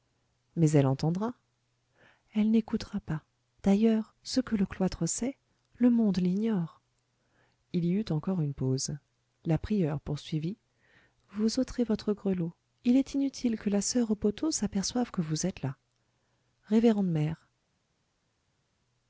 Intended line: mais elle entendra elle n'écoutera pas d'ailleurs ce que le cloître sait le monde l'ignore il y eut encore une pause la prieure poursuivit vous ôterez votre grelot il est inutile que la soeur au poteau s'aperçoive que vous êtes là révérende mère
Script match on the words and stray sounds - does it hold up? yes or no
yes